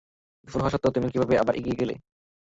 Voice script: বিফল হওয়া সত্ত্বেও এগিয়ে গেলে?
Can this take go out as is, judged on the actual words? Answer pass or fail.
fail